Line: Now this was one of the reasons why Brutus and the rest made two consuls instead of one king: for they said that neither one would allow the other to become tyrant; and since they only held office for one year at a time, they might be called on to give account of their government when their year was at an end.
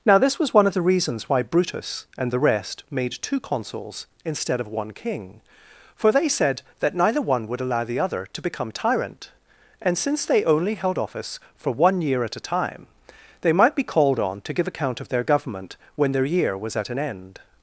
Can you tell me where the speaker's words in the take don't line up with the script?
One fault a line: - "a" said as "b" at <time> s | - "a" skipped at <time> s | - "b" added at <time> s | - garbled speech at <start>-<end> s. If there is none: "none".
none